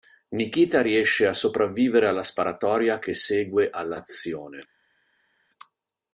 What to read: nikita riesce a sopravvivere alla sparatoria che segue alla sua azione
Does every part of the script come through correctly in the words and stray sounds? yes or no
no